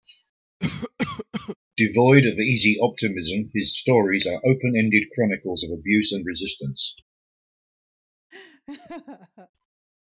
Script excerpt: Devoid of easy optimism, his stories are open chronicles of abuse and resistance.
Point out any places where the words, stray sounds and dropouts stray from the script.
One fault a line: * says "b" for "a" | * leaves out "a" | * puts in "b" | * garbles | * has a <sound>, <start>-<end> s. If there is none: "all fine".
* has a cough, 0.6-1.6 s
* puts in "ended"
* has a laugh, 8.3-9.5 s